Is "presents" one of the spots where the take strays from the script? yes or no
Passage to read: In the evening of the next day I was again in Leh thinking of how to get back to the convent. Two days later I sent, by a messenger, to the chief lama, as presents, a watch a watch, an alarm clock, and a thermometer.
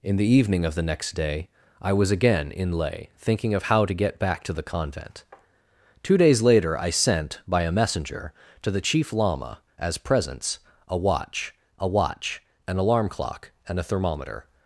no